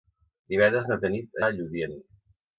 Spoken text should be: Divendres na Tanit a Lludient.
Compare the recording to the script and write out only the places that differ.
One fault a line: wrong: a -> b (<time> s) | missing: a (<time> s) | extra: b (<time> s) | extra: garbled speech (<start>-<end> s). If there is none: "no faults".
no faults